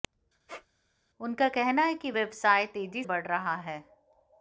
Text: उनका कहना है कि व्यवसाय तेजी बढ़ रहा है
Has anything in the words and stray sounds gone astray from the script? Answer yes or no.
yes